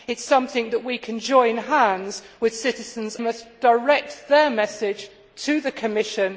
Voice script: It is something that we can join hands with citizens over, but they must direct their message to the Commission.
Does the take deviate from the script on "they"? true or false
true